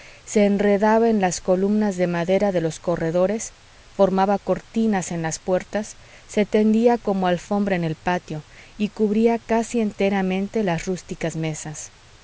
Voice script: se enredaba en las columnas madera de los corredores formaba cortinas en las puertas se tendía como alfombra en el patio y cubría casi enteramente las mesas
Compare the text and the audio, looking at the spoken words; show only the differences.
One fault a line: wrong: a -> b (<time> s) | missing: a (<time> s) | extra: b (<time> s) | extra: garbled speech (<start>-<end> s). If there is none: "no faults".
extra: de (1.9 s)
extra: rústicas (10.9 s)